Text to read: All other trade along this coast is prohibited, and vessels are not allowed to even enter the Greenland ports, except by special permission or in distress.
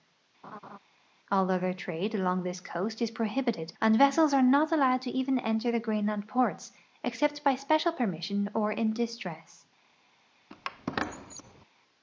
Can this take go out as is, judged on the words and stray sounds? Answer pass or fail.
fail